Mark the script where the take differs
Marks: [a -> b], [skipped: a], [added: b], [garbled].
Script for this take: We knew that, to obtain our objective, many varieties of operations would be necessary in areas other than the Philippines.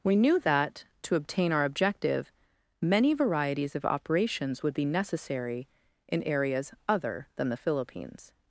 We knew that, to obtain our objective, many varieties of operations would be necessary in areas other than the Philippines.